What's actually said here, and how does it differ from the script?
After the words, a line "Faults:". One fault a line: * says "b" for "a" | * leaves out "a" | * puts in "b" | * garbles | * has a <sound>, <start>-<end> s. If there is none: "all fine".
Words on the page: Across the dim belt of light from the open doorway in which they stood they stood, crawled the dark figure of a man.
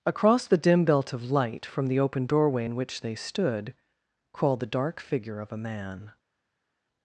Across the dim belt of light from the open doorway in which they stood, crawled the dark figure of a man.
Faults:
* leaves out "they stood"